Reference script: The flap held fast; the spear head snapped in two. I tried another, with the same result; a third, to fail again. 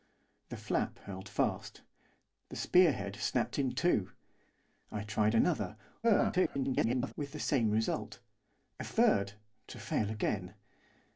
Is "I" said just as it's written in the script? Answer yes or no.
yes